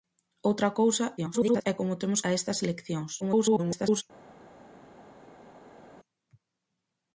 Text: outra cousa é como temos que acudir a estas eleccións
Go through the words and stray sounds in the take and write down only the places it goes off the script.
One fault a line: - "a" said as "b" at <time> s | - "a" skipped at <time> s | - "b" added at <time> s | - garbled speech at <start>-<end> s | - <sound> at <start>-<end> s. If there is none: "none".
- garbled speech at 1.2-1.7 s
- "que acudir" skipped at 2.2 s
- garbled speech at 3.2-4.0 s